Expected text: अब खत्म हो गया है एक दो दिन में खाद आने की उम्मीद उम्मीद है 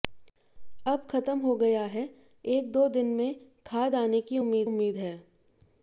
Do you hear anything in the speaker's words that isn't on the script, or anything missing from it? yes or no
no